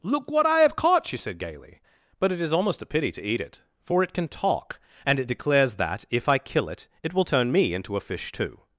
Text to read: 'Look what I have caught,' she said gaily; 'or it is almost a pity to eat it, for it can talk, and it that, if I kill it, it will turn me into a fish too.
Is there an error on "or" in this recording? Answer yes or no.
yes